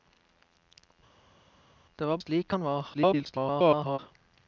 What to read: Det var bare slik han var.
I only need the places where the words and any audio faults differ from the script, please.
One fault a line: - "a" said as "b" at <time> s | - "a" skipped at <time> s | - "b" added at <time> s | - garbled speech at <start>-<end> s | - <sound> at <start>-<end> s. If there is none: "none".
- "bare" skipped at 2.2 s
- garbled speech at 2.9-4.0 s